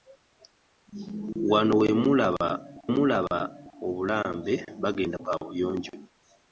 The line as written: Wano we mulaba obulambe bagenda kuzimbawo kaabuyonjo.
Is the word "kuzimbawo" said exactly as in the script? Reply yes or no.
no